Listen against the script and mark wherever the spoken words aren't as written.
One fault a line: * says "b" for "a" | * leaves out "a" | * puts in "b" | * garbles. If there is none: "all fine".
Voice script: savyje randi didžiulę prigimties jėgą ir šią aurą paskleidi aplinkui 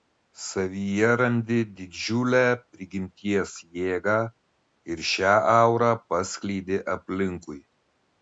all fine